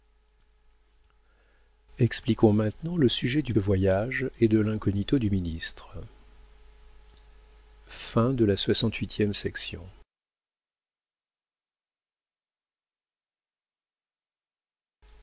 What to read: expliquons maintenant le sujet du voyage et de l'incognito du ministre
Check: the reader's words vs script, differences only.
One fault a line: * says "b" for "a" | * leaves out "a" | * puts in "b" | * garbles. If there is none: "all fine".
all fine